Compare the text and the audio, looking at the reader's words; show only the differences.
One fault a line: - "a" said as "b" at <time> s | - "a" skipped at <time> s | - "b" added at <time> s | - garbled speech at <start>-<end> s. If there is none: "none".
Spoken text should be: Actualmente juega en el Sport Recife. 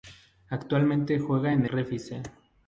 - "el Sport" skipped at 1.7 s